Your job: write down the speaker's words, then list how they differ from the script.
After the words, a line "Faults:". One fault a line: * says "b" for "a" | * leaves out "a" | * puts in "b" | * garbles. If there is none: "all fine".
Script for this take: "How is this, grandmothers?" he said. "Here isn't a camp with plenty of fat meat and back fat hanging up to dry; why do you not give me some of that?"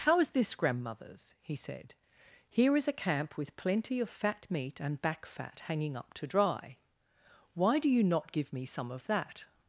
"How is this, grandmothers?" he said. "Here is a camp with plenty of fat meat and back fat hanging up to dry; why do you not give me some of that?"
Faults:
* says "is" for "isn't"